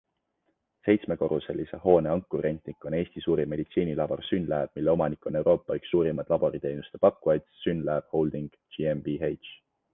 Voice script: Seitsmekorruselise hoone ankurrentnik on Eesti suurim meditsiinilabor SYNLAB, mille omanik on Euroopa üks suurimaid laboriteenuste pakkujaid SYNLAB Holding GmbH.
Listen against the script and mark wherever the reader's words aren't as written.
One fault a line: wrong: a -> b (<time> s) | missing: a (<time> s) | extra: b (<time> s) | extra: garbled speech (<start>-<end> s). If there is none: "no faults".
no faults